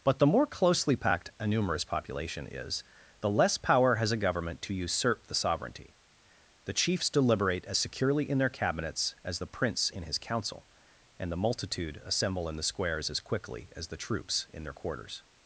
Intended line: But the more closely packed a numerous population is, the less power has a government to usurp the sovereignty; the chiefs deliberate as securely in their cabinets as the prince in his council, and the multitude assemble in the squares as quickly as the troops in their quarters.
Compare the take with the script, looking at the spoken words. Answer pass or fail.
pass